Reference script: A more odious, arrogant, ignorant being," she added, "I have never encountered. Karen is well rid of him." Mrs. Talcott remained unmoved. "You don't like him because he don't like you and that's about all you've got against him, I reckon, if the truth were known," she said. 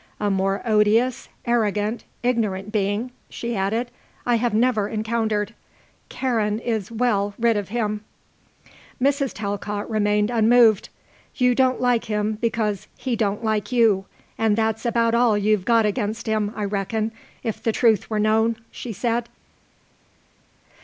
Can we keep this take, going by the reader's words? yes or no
yes